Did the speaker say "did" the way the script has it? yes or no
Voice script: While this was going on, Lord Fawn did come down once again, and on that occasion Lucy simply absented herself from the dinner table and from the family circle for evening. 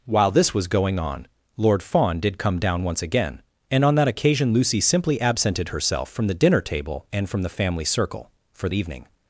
yes